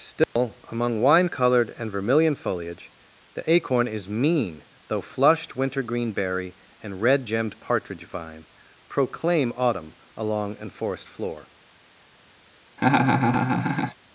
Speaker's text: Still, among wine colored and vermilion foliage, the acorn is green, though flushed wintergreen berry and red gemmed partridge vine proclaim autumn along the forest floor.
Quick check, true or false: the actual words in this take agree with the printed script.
false